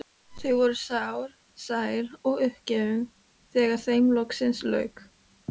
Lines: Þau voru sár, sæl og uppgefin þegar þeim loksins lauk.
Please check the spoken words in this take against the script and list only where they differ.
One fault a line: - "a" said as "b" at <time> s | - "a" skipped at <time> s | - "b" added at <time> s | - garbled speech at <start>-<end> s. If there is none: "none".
none